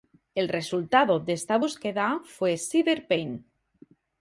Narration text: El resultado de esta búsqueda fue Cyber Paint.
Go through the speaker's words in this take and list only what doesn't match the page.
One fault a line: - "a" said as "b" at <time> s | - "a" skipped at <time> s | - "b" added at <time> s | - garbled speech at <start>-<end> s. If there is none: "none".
none